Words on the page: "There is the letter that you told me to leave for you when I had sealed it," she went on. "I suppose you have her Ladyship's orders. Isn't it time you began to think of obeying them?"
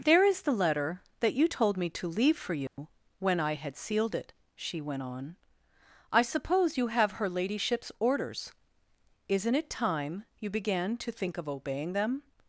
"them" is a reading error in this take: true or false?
false